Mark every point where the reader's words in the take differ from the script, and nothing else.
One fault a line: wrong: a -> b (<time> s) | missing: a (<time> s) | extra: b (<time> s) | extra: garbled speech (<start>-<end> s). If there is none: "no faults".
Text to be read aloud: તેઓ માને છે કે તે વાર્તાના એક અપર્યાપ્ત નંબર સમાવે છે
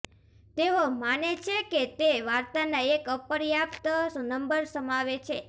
no faults